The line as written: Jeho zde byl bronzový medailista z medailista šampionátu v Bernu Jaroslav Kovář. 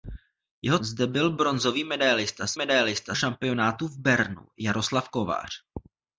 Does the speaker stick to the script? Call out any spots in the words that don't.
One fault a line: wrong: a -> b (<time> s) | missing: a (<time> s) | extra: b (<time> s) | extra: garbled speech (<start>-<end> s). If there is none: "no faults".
no faults